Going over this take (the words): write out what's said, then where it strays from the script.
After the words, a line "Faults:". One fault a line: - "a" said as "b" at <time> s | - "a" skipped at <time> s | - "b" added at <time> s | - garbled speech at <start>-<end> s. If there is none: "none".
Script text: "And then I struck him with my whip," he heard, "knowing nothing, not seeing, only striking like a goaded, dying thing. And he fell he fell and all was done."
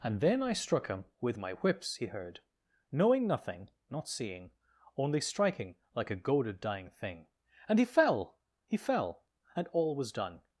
"And then I struck him with my whips," he heard, "knowing nothing, not seeing, only striking like a goaded, dying thing. And he fell he fell and all was done."
Faults:
- "whip" said as "whips" at 1.5 s